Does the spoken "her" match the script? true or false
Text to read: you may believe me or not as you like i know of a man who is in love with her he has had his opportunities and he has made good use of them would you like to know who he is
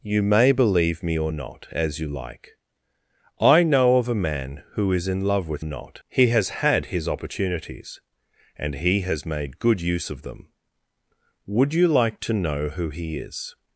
false